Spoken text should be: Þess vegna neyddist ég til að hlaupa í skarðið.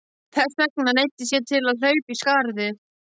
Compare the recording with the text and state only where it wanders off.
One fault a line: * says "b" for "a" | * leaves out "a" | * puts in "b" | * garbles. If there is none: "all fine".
all fine